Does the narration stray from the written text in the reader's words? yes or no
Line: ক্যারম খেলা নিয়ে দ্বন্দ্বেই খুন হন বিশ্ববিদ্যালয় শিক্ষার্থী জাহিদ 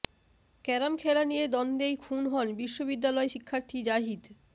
no